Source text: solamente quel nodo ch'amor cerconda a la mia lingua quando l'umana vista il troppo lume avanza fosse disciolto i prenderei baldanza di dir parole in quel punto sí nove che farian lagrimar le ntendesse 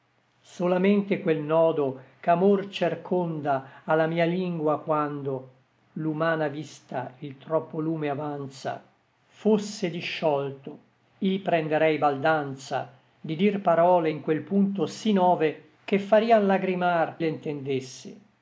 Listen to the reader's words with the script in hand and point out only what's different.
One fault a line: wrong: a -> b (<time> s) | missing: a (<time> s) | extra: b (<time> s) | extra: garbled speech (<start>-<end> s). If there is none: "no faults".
no faults